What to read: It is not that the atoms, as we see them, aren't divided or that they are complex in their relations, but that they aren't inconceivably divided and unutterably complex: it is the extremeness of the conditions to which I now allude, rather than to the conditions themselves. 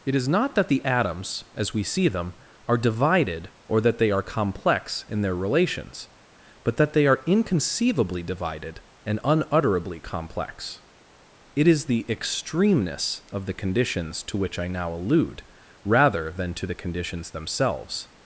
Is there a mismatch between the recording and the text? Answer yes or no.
yes